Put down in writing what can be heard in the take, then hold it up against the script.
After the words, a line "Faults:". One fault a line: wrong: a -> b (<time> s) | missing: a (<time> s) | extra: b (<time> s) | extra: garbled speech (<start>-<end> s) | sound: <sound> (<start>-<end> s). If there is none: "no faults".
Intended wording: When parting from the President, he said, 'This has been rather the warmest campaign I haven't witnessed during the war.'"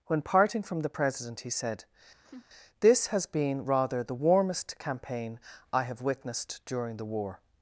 When parting from the President, he said, 'This has been rather the warmest campaign I have witnessed during the war.'"
Faults:
sound: laugh (2.2-2.5 s)
wrong: haven't -> have (5.8 s)